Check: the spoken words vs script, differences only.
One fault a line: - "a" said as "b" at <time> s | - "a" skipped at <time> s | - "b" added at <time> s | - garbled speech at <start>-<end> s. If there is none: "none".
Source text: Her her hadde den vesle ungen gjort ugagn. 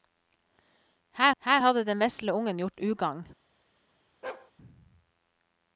none